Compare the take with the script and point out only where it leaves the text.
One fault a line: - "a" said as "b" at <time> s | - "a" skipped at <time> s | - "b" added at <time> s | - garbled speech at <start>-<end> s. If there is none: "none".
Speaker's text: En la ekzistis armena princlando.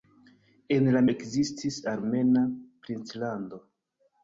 none